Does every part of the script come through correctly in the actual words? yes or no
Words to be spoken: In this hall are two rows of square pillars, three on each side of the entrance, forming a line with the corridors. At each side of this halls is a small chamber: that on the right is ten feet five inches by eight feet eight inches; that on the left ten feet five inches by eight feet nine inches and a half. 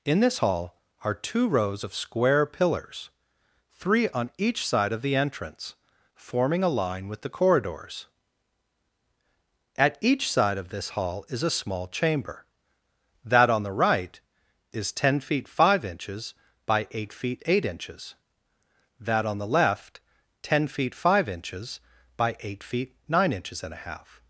no